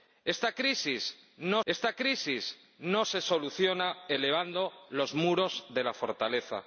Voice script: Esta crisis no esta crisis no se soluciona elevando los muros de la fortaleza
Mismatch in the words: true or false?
false